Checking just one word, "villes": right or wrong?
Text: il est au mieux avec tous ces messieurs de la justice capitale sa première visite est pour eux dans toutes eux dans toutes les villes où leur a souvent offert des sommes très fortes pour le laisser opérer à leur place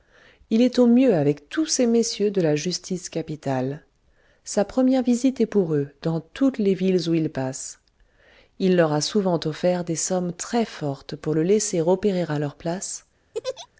wrong